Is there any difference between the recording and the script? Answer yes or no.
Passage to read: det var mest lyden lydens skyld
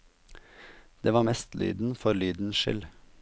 yes